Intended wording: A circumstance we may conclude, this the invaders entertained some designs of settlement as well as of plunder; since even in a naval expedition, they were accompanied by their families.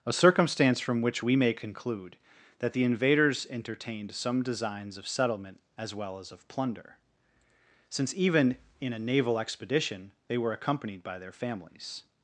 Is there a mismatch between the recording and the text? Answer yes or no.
yes